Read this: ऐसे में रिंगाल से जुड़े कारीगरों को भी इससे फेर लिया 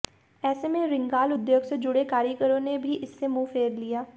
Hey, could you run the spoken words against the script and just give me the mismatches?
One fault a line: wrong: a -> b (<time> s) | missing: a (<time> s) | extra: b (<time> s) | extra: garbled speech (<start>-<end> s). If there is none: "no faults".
extra: उद्योग (1.3 s)
wrong: को -> ने (2.6 s)
extra: मुंह (3.3 s)